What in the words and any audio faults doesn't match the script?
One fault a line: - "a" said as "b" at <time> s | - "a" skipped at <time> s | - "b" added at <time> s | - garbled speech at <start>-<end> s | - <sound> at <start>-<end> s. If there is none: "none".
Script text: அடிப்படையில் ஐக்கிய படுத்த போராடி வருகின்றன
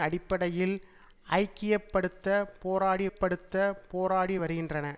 - "படுத்த போராடி" added at 3.1 s